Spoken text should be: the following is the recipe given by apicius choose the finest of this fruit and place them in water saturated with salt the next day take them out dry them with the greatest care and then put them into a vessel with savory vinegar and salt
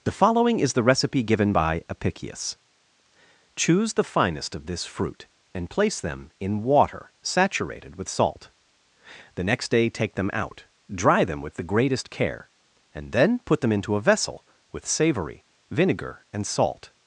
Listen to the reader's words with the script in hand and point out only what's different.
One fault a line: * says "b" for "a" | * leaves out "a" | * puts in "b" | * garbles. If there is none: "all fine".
all fine